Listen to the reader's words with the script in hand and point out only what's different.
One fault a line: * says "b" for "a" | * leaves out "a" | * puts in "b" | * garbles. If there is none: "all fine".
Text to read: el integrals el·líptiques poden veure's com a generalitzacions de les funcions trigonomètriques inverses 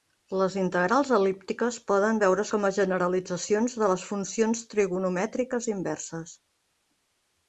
* says "les" for "el"